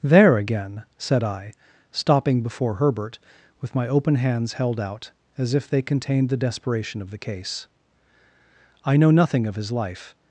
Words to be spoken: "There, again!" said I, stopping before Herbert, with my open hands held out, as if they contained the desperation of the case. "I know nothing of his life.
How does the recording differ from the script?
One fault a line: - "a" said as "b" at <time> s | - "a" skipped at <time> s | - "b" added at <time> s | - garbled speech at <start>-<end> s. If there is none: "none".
none